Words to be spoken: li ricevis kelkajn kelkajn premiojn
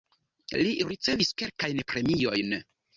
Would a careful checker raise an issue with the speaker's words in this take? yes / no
yes